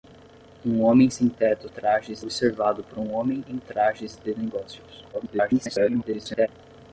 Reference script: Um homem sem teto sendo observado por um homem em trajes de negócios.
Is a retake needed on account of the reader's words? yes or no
yes